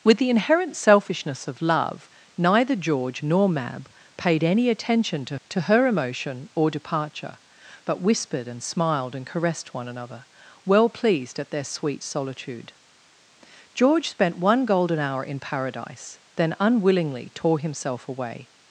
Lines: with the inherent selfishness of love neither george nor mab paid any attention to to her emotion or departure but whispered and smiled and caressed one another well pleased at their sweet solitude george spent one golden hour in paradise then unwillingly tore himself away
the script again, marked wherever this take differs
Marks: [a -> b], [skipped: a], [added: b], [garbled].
with the inherent selfishness of love neither george nor mab paid any attention to to her emotion or departure but whispered and smiled and caressed one another well pleased at their sweet solitude george spent one golden hour in paradise then unwillingly tore himself away